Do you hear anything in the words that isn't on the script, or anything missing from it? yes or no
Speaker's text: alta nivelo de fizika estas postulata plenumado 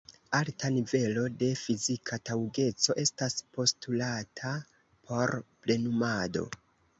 yes